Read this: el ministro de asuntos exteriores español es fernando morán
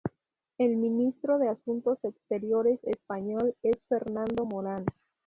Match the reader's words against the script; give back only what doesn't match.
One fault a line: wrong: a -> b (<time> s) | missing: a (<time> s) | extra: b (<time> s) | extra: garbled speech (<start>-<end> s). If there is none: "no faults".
no faults